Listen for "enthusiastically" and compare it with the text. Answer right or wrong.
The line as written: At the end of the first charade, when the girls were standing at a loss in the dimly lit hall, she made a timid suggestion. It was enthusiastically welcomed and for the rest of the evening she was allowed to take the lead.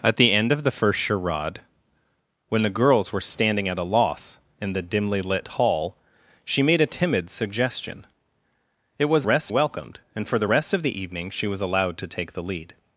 wrong